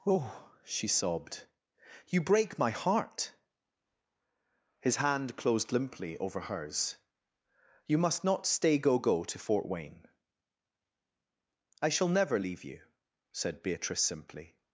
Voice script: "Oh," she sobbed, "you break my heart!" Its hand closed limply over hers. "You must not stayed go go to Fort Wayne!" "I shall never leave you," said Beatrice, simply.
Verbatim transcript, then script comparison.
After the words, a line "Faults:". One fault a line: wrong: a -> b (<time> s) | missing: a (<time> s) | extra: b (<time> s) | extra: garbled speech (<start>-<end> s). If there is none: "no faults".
"Oh," she sobbed, "you break my heart!" His hand closed limply over hers. "You must not stay go go to Fort Wayne!" "I shall never leave you," said Beatrice, simply.
Faults:
wrong: Its -> His (4.8 s)
wrong: stayed -> stay (8.5 s)